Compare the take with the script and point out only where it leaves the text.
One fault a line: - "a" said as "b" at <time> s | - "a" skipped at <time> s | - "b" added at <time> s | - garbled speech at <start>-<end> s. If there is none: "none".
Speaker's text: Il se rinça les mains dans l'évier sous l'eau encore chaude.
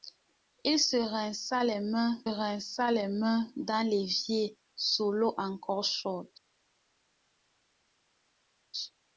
- "rinça les mains" added at 2.2 s